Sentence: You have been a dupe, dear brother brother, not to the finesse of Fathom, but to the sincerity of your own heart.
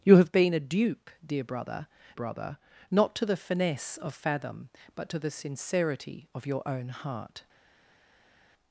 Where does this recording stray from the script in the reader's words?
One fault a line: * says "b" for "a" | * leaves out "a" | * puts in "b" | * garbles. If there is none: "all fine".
all fine